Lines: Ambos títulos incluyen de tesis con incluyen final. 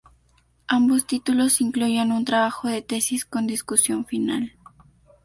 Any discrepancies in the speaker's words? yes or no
yes